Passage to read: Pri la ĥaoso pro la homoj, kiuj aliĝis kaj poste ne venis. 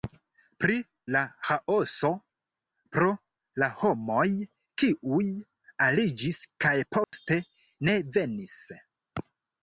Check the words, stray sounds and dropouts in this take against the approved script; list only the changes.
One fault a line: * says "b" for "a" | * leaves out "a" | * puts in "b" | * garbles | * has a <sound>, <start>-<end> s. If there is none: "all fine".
* has a dropout, 7.0-7.1 s